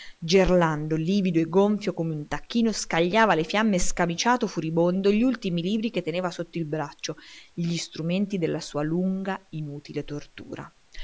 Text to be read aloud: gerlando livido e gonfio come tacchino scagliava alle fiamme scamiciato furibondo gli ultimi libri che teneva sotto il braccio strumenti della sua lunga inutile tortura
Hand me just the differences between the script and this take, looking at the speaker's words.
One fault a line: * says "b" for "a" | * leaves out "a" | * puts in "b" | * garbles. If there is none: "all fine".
* puts in "un"
* puts in "gli"